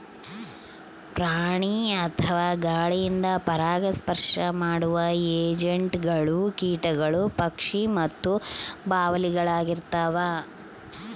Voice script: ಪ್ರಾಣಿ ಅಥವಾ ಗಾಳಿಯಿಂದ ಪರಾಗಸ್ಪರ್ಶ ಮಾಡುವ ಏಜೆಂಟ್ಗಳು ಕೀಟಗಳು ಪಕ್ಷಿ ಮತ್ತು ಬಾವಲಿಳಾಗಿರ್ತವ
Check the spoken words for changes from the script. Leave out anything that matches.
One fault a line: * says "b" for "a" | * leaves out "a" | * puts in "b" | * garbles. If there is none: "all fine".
all fine